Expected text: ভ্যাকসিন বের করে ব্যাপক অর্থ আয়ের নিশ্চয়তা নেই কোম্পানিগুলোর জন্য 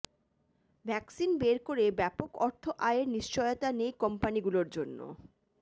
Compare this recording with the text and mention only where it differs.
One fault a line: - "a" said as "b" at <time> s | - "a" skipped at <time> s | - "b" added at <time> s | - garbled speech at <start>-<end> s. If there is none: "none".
none